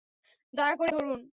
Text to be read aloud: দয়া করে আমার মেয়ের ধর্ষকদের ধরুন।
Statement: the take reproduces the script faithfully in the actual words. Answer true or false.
false